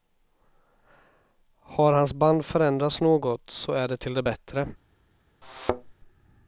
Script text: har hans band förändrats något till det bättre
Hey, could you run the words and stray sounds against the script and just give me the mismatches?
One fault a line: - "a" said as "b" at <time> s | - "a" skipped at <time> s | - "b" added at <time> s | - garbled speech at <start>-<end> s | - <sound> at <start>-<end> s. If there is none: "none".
- "så är det" added at 3.5 s
- thud at 5.4-5.9 s